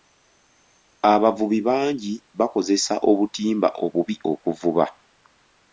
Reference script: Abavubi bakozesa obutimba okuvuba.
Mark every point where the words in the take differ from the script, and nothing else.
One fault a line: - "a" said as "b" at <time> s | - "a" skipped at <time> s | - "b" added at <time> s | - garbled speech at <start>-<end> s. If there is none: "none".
- "bangi" added at 1.7 s
- "obubi" added at 3.8 s